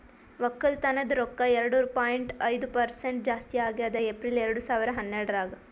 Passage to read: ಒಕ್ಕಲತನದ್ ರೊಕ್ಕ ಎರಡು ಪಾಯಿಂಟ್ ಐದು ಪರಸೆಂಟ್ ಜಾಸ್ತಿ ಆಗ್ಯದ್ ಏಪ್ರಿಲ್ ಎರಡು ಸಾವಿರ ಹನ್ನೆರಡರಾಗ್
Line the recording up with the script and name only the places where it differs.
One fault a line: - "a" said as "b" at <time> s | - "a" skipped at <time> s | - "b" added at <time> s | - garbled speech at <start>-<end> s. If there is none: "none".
none